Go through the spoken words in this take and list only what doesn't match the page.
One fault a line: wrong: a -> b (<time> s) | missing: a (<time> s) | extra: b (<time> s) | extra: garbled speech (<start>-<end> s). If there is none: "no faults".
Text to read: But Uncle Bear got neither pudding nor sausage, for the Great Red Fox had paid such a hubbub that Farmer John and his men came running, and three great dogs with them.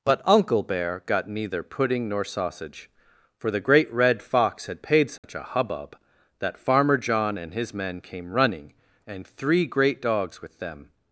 no faults